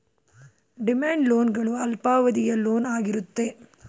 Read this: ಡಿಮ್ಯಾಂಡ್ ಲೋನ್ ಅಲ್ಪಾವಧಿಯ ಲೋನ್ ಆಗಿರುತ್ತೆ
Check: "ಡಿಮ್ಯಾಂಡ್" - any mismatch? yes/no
no